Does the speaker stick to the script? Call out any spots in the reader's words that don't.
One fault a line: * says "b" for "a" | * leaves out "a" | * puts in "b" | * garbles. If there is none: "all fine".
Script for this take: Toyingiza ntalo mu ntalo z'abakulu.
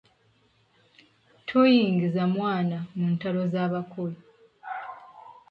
* says "mwana" for "ntalo"